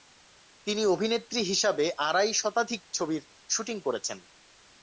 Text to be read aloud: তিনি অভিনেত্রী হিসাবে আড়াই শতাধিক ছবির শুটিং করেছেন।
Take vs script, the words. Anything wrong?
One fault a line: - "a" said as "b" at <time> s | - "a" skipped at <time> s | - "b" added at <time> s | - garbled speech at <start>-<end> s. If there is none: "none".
none